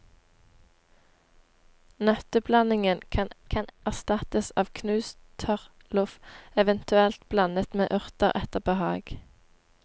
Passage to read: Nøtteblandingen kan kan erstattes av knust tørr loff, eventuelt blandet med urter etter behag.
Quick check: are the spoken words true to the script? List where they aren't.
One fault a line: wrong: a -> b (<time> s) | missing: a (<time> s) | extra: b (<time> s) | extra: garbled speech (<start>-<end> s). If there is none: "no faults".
no faults